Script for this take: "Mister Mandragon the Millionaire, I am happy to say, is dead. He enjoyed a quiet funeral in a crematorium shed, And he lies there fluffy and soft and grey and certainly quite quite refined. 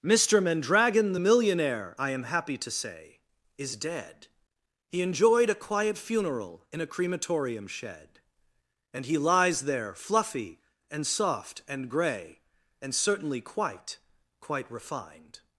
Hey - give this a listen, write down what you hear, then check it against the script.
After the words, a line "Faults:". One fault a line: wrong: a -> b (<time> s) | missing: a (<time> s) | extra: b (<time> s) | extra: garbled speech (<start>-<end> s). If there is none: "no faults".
"Mister Mandragon the Millionaire, I am happy to say, is dead. He enjoyed a quiet funeral in a crematorium shed, And he lies there fluffy and soft and grey and certainly quite quite refined.
Faults:
no faults